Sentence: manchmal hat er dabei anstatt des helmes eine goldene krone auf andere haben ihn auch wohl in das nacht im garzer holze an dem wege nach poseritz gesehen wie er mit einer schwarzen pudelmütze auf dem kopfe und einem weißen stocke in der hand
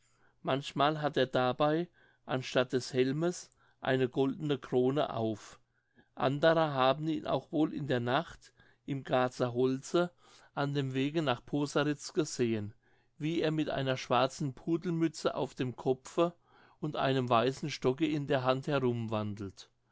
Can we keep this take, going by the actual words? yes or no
no